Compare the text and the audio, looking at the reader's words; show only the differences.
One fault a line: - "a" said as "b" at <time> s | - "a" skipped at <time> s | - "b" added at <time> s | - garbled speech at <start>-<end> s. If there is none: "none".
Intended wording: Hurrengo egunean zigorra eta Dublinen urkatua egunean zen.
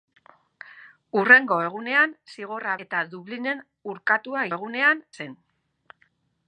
none